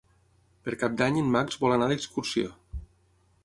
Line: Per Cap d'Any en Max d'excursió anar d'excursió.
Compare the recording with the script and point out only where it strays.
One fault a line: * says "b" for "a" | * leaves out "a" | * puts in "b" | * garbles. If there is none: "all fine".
* says "vol" for "d'excursió"